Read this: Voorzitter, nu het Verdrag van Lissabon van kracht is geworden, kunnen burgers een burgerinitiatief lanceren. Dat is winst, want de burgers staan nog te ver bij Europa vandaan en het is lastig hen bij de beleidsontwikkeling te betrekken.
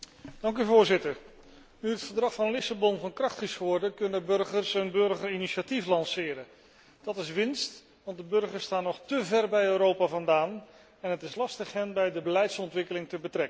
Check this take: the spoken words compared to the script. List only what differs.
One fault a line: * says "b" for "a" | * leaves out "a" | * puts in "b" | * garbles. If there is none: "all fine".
all fine